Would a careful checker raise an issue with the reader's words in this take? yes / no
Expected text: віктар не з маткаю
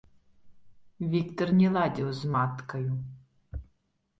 yes